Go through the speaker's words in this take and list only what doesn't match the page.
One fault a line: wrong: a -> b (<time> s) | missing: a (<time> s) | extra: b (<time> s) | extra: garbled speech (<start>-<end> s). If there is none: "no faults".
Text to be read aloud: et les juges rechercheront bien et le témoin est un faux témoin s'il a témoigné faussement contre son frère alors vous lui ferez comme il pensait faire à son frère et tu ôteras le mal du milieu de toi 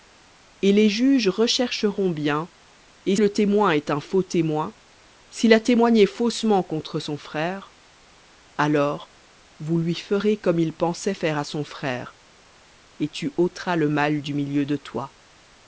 no faults